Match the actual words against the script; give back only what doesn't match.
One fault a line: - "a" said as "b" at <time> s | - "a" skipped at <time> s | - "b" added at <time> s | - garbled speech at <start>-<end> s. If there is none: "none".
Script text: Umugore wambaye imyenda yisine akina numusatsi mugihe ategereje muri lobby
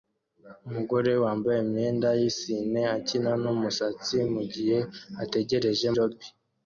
- "muri" skipped at 5.9 s